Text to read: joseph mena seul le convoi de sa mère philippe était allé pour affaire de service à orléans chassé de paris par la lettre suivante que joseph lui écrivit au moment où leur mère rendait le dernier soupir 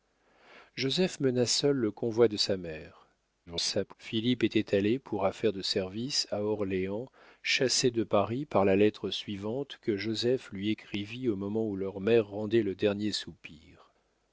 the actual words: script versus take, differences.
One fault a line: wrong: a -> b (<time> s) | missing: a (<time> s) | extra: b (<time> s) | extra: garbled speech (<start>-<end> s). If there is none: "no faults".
extra: garbled speech (3.5-3.9 s)